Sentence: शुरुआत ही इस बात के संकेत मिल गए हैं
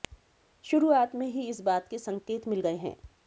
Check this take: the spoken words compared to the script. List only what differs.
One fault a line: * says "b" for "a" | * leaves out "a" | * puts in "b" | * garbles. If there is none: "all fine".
* puts in "में"